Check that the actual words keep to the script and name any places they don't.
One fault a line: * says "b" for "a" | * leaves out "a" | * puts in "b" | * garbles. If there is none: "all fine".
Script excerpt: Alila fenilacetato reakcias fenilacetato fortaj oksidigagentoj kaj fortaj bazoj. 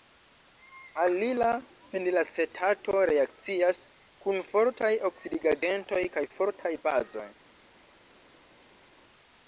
* says "kun" for "fenilacetato"